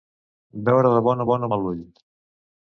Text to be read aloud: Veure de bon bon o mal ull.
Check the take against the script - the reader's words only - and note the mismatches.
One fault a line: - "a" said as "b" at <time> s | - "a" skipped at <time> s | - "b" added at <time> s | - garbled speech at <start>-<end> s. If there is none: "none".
none